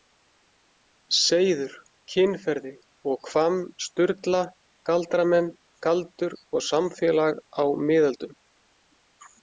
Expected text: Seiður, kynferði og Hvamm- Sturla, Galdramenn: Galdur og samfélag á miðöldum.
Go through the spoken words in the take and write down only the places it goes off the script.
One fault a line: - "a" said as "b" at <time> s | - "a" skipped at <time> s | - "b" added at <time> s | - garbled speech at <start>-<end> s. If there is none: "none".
none